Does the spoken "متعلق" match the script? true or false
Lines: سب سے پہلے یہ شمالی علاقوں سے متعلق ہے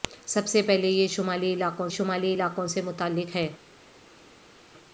true